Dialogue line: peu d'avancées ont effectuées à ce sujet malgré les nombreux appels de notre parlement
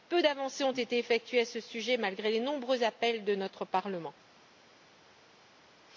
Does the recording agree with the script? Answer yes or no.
no